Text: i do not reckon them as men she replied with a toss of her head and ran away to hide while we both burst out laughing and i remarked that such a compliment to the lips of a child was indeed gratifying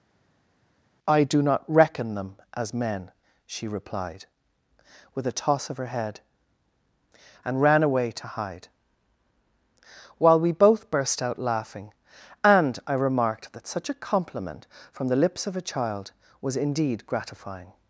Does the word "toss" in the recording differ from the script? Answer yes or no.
no